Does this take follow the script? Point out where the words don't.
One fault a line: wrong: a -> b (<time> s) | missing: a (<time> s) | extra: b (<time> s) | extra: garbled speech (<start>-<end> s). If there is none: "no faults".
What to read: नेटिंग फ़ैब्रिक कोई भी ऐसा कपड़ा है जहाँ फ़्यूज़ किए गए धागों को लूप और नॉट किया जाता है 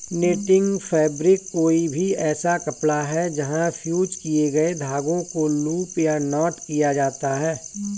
wrong: और -> या (6.0 s)